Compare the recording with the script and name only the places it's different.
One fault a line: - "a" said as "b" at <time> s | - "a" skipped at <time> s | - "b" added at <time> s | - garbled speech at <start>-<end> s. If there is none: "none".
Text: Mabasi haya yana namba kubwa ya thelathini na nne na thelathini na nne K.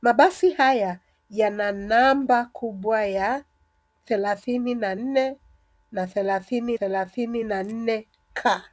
- "thelathini" added at 6.7 s